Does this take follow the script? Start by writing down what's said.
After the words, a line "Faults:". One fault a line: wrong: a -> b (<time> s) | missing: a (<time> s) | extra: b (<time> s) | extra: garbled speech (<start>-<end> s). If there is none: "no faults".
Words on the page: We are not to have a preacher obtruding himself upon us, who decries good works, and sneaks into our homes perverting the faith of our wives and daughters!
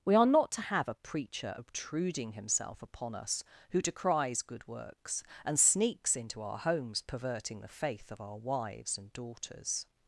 We are not to have a preacher obtruding himself upon us, who decries good works, and sneaks into our homes perverting the faith of our wives and daughters!
Faults:
no faults